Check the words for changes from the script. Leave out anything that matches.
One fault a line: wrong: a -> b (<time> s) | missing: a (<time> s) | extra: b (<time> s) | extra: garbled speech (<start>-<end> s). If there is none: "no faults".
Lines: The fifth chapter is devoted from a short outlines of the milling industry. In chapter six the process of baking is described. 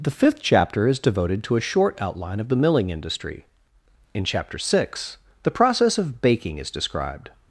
wrong: from -> to (1.4 s)
wrong: outlines -> outline (2.0 s)